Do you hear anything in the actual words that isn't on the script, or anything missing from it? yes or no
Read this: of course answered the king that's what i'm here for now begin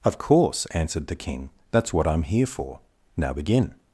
no